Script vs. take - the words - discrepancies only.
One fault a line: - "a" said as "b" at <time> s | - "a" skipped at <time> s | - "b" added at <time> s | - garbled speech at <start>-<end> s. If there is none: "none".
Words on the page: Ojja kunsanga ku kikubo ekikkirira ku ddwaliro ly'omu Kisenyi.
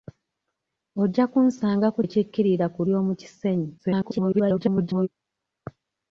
- "kikubo" skipped at 2.0 s
- "ddwaliro" skipped at 2.8 s
- garbled speech at 3.8-5.1 s